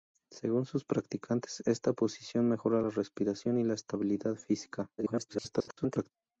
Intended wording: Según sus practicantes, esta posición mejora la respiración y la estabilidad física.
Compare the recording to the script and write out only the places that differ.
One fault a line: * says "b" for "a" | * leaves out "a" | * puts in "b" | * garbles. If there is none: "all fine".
* garbles